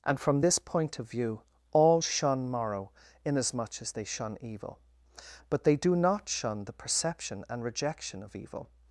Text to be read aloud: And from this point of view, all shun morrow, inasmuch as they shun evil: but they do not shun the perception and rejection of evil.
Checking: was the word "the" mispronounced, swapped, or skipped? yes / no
no